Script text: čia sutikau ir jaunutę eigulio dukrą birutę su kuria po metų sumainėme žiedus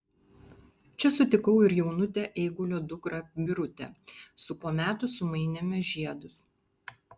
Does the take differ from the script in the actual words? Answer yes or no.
yes